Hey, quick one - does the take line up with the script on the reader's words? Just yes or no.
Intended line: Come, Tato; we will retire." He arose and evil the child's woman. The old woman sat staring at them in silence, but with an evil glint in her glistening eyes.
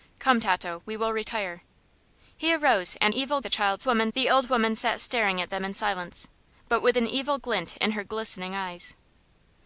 yes